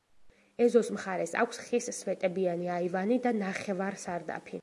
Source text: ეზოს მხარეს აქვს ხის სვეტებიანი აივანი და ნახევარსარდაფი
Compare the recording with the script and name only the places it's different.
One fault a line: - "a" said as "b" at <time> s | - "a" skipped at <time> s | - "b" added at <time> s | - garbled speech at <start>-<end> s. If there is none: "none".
none